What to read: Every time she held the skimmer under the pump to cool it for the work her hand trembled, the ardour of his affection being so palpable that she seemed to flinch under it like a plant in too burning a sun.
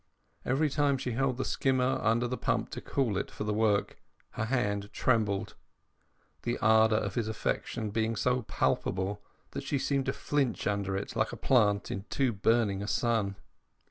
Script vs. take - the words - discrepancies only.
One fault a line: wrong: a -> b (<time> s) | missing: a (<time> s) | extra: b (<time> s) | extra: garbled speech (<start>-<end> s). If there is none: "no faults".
no faults